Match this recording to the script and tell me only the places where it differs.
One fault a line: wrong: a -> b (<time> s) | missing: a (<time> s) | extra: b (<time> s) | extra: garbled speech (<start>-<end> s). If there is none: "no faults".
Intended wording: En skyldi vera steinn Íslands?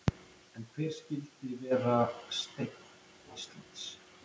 extra: hver (0.8 s)